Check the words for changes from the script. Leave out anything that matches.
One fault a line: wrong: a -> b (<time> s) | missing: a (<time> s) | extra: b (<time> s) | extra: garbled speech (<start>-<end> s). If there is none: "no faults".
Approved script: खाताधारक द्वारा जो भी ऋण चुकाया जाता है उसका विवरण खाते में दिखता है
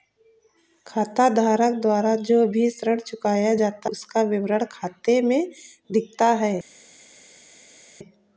missing: है (3.9 s)